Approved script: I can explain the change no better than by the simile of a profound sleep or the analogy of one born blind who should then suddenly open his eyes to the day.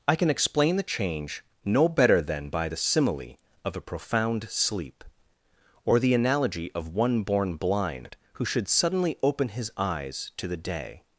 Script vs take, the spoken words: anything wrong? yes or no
yes